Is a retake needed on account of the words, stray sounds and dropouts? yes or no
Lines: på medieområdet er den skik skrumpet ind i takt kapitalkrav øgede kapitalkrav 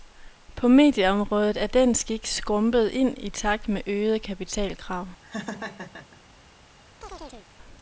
yes